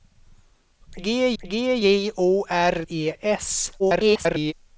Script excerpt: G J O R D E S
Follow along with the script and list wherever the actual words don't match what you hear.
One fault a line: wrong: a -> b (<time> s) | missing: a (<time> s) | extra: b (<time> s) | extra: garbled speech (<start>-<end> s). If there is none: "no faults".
extra: g (1.4 s)
missing: D (2.8 s)
extra: garbled speech (3.8-4.5 s)